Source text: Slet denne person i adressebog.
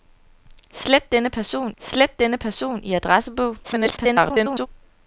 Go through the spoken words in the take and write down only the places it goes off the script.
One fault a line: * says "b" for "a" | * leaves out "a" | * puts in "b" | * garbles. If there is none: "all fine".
* puts in "slet denne person"
* garbles